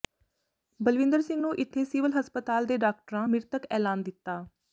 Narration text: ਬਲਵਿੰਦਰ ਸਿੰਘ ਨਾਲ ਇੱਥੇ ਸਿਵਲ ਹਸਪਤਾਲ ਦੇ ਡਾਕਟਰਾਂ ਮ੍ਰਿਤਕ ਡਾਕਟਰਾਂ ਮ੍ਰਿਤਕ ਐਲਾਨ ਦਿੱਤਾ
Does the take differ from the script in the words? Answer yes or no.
yes